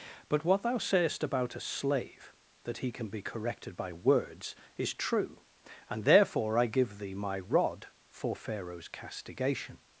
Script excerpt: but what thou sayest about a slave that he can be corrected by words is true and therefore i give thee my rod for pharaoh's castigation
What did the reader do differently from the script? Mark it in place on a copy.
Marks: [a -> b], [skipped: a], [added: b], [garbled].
but what thou sayest about a slave that he can be corrected by words is true and therefore i give thee my rod for pharaoh's castigation